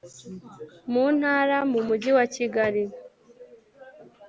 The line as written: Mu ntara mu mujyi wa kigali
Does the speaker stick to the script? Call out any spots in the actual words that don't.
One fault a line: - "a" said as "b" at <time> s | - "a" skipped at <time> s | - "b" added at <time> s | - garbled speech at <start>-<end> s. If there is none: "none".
none